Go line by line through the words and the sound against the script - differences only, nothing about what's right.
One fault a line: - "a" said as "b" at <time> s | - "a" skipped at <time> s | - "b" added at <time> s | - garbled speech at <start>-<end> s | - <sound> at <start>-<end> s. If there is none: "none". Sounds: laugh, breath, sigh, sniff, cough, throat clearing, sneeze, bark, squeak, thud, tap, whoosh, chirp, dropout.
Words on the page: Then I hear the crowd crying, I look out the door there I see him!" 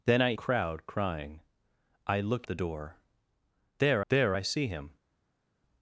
- "hear the" skipped at 0.3 s
- "out" skipped at 2.5 s
- "there" added at 4.1 s